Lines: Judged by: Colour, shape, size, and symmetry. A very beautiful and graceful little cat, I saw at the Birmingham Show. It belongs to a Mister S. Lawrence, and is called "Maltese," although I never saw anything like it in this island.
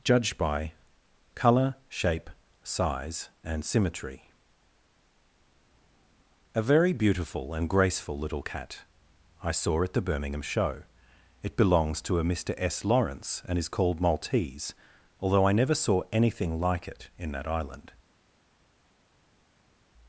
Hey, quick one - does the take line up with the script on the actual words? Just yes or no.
no